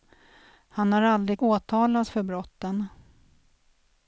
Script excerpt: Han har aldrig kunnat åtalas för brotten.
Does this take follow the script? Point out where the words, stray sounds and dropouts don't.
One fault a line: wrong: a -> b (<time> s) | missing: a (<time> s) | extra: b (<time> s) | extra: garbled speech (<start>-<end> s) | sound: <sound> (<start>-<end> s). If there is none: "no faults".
missing: kunnat (1.4 s)